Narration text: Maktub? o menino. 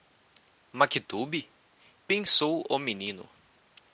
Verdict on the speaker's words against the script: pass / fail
fail